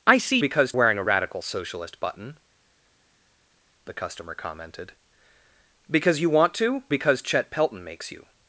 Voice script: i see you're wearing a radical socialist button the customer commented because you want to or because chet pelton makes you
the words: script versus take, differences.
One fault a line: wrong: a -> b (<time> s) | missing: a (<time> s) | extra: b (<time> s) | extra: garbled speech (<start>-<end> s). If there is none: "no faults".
wrong: you're -> because (0.4 s)
missing: or (6.8 s)